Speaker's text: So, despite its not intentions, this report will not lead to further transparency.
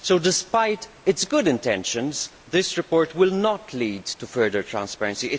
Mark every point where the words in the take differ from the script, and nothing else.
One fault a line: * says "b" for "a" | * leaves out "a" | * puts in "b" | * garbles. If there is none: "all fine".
* says "good" for "not"